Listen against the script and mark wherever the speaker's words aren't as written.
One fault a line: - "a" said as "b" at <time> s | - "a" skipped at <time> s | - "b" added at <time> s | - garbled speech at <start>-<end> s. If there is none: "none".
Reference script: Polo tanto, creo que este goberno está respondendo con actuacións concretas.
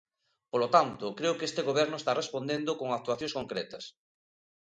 none